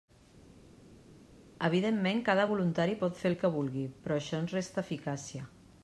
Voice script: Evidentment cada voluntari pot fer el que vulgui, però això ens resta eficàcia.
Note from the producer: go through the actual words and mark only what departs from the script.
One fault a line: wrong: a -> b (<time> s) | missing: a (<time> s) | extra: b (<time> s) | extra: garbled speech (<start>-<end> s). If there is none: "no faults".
no faults